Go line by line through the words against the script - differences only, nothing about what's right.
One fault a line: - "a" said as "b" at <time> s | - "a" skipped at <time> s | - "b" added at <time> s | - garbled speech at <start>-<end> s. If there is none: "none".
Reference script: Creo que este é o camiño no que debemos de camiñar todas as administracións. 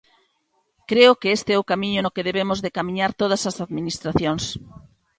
none